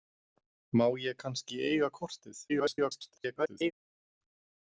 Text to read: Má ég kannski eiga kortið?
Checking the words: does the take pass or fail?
fail